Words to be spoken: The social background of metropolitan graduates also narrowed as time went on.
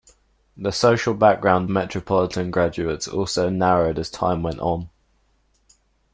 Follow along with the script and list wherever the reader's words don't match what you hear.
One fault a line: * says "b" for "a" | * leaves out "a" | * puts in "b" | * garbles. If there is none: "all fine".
* leaves out "of"